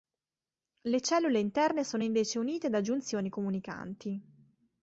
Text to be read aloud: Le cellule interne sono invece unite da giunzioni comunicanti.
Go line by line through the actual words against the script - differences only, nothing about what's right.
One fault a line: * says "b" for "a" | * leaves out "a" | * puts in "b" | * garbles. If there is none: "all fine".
all fine